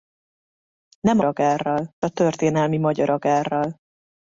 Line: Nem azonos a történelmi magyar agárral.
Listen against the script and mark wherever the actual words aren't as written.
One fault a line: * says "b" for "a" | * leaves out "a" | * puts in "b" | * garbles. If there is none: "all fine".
* says "agárral" for "azonos"